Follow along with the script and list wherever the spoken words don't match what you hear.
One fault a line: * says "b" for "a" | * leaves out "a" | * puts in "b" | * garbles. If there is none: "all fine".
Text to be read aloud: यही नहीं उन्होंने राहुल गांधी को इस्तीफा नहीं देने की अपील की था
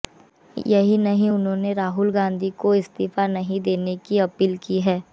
* says "है" for "था"